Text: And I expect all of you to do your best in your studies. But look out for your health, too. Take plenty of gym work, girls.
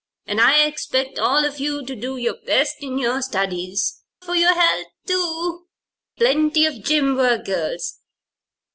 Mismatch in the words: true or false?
true